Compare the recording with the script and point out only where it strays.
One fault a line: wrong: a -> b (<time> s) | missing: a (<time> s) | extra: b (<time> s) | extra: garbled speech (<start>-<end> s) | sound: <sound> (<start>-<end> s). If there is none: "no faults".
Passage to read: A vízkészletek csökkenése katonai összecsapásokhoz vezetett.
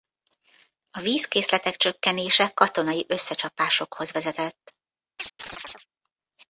sound: chirp (5.2-5.9 s)